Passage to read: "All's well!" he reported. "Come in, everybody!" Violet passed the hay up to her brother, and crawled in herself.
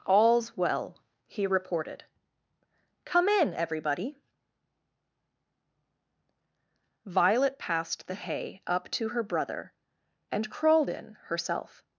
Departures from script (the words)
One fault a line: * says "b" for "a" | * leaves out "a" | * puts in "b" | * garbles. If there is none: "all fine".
all fine